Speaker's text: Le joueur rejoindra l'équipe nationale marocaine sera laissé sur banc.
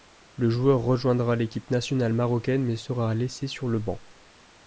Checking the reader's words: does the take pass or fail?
fail